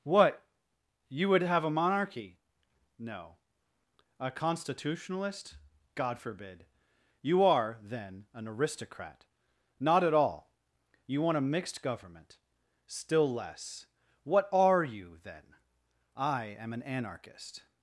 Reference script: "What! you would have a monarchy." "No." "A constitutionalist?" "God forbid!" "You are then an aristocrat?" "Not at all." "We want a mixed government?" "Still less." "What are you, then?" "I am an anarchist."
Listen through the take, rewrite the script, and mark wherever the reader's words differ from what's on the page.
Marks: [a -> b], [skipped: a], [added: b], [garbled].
"What! you would have a monarchy." "No." "A constitutionalist?" "God forbid!" "You are then an aristocrat?" "Not at all." ["We -> You] want a mixed government?" "Still less." "What are you, then?" "I am an anarchist."